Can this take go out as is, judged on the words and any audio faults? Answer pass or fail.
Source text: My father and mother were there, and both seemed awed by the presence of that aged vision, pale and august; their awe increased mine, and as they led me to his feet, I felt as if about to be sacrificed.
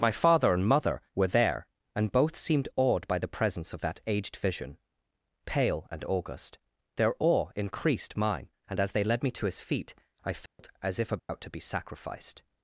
fail